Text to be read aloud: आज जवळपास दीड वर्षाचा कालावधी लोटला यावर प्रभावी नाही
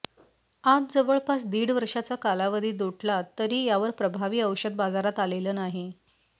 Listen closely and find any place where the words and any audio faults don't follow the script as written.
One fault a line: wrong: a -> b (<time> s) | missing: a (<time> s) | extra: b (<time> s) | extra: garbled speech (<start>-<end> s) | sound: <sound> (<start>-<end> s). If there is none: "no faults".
extra: तरी (3.4 s)
extra: औषध बाजारात आलेलं (4.4 s)